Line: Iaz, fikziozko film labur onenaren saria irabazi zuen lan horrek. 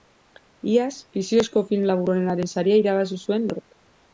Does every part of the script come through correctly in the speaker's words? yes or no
no